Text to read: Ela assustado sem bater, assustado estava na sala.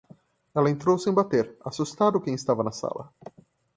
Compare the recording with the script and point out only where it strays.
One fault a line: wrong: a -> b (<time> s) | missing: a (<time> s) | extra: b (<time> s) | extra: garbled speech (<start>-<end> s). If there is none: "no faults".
wrong: assustado -> entrou (0.7 s)
extra: quem (2.2 s)